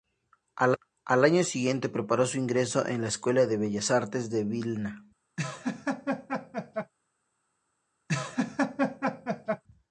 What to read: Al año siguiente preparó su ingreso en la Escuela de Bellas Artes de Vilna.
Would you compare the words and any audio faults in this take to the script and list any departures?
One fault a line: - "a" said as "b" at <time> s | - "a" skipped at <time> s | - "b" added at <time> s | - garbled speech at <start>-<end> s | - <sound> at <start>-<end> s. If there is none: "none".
- laugh at 5.4-6.9 s
- laugh at 8.1-9.6 s